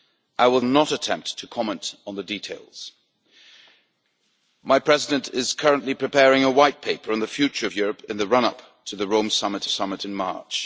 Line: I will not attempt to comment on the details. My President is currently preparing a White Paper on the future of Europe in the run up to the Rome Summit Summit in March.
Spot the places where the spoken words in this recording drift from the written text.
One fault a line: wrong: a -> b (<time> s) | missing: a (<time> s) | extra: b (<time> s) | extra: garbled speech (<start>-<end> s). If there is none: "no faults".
no faults